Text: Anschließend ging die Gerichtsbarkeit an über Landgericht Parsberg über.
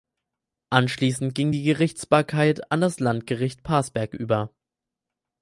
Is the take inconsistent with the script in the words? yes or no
yes